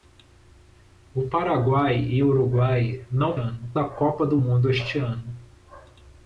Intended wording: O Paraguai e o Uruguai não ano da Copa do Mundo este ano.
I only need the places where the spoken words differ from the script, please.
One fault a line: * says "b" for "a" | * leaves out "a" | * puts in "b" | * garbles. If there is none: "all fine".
all fine